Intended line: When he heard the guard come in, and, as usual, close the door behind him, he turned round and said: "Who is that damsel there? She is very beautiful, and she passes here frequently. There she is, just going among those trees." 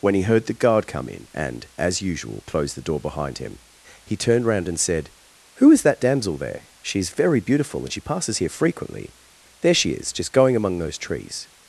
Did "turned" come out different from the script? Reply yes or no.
no